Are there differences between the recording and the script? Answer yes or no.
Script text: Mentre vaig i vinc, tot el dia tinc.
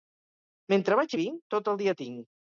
no